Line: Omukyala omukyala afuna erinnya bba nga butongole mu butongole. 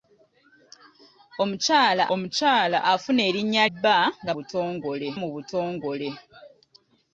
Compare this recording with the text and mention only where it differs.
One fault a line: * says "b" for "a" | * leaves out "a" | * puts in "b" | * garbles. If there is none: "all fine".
all fine